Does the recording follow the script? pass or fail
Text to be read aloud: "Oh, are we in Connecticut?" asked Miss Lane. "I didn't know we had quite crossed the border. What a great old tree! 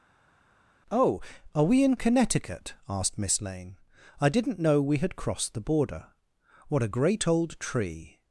fail